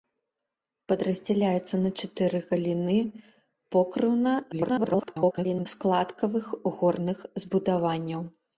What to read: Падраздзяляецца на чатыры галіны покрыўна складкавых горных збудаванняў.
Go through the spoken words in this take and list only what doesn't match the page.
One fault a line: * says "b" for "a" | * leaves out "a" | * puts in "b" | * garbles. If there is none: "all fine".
* garbles